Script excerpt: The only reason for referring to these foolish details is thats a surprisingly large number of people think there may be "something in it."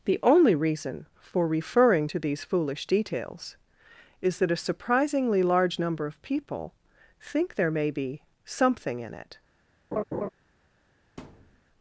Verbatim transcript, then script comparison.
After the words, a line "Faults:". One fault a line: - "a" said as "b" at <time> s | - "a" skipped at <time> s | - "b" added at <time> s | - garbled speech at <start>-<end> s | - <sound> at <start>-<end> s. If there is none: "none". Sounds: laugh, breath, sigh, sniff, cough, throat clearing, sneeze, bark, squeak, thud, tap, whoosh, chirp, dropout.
The only reason for referring to these foolish details is that a surprisingly large number of people think there may be "something in it."
Faults:
- "thats" said as "that" at 4.4 s
- laugh at 9.9-10.3 s
- thud at 11.2-11.6 s